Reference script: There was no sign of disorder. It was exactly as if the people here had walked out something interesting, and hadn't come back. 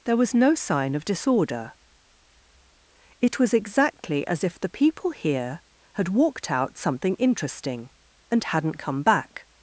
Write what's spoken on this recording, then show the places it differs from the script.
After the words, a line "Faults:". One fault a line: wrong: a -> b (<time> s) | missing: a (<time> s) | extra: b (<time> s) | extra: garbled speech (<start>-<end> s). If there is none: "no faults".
There was no sign of disorder. It was exactly as if the people here had walked out something interesting, and hadn't come back.
Faults:
no faults